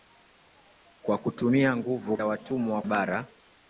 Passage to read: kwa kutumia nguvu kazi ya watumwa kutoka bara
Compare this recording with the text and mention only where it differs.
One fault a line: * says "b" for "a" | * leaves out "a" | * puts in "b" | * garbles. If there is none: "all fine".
* leaves out "kazi"
* leaves out "kutoka"